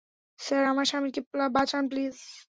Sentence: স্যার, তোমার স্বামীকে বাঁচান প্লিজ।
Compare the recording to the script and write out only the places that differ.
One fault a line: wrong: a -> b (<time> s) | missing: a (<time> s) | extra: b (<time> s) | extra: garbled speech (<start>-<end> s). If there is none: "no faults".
wrong: তোমার -> আমার (0.6 s)